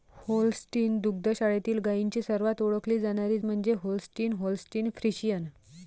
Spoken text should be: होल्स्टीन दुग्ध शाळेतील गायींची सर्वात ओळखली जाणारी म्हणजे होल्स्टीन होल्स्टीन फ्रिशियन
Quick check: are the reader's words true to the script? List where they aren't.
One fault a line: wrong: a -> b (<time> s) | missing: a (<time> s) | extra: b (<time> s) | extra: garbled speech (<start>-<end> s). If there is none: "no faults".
no faults